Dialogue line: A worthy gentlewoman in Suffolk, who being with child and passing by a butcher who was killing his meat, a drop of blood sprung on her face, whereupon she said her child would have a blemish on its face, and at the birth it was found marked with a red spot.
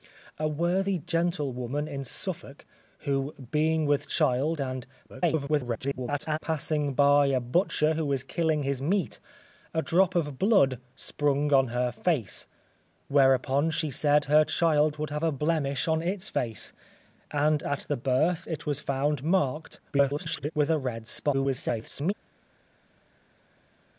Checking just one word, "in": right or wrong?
right